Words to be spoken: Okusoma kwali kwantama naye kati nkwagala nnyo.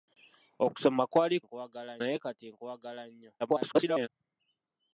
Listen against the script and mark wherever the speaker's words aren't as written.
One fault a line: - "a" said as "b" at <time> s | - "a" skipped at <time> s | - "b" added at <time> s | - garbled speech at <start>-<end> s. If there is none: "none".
- "kwantama" said as "nkwagala" at 1.4 s
- garbled speech at 3.4-4.1 s